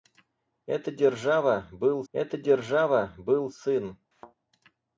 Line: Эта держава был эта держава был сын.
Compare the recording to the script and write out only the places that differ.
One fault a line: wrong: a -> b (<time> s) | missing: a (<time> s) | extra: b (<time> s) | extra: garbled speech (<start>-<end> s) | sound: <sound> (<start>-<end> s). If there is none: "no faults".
sound: thud (4.1-4.4 s)